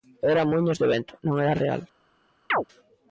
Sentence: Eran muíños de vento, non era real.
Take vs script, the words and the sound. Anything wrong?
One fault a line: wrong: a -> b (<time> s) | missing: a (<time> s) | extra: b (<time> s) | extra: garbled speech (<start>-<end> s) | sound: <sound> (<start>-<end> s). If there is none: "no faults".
sound: chirp (2.5-2.6 s)